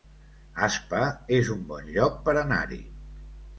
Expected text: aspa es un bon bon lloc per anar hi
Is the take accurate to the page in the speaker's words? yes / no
no